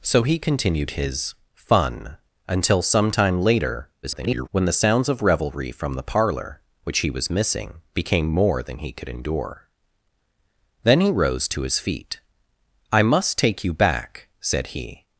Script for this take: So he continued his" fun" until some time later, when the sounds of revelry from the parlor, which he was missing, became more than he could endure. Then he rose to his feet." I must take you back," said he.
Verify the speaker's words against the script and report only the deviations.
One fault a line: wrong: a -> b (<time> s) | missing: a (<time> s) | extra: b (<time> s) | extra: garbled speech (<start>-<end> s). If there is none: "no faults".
extra: garbled speech (4.0-4.5 s)